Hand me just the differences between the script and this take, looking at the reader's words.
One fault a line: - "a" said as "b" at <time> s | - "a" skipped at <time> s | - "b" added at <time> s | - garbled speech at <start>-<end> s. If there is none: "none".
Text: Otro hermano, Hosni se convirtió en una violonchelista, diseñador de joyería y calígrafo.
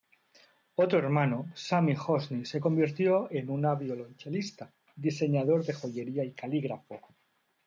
- "Sami" added at 1.5 s